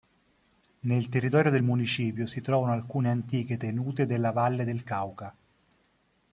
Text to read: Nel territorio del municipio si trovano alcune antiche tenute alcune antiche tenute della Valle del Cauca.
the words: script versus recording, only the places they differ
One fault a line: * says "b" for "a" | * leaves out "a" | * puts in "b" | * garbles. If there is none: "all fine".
* leaves out "alcune antiche tenute"